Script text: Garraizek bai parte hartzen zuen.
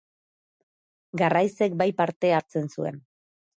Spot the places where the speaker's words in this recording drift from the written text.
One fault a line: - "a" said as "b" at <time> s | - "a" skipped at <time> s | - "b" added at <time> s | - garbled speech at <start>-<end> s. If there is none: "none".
none